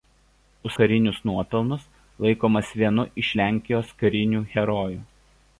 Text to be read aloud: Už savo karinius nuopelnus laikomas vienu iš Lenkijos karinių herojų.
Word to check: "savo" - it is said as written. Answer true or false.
false